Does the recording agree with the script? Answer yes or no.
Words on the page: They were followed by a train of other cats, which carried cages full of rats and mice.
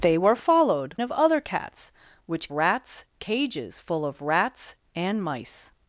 no